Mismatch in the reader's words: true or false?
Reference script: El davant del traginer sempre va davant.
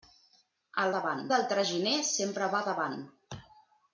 false